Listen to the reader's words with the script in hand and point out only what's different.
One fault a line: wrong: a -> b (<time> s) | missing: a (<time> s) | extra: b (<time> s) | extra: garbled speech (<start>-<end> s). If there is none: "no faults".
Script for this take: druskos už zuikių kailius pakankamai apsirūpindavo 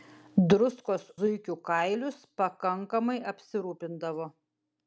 missing: už (1.0 s)